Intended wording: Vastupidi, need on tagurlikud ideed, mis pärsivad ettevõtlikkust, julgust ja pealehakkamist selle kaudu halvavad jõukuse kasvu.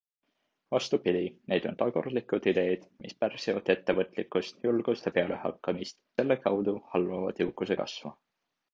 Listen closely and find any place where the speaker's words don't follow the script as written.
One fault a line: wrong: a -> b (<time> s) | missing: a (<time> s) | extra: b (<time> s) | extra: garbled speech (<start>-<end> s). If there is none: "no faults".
no faults